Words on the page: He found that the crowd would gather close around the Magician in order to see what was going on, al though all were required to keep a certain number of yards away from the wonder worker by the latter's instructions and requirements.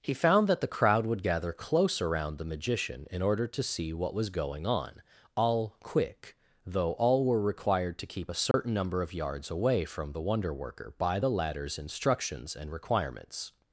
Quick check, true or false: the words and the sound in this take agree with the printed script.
false